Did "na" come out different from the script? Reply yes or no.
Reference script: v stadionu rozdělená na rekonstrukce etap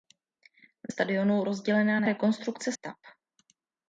no